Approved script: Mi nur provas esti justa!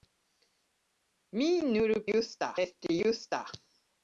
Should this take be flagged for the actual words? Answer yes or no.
yes